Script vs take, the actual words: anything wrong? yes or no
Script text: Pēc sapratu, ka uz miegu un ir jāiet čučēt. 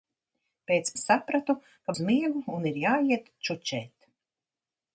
no